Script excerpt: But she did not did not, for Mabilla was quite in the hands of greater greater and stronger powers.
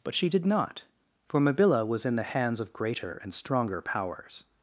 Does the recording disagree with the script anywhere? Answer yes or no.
yes